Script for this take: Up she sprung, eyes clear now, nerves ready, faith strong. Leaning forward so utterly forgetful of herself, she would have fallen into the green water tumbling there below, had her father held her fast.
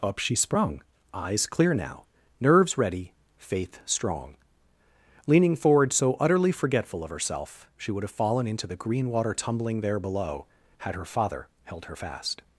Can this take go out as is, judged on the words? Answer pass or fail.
pass